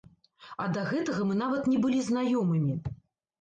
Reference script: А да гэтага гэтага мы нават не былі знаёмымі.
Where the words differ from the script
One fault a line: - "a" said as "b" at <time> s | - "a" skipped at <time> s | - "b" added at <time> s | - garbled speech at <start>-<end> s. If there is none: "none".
- "гэтага" skipped at 1.3 s